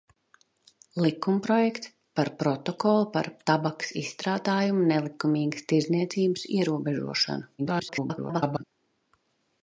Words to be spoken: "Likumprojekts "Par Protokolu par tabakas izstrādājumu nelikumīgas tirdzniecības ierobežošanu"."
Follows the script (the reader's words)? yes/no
no